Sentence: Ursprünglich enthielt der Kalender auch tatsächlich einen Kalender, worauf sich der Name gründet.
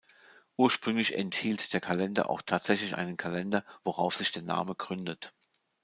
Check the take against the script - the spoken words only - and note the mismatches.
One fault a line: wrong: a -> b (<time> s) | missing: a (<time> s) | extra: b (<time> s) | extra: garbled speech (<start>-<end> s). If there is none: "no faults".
no faults